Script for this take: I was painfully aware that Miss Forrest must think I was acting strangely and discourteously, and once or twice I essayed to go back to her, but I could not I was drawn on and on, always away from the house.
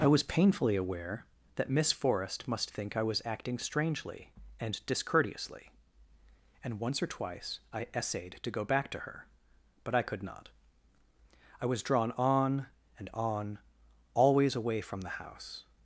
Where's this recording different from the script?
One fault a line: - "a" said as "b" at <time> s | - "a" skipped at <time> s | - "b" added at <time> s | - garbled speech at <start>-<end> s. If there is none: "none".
none